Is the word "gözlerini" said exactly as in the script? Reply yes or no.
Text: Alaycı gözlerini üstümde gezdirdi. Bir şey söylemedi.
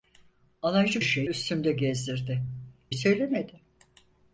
no